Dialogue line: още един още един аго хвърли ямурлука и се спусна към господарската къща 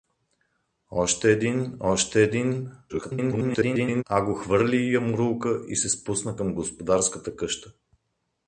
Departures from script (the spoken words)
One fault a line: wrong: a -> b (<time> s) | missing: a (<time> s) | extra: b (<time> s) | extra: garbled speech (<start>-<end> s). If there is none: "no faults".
extra: garbled speech (2.9-4.0 s)